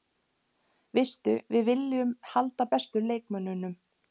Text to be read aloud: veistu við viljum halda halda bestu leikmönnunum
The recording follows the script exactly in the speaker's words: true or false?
false